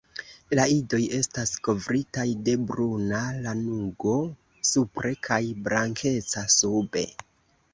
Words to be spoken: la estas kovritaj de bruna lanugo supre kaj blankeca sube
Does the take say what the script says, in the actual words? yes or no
no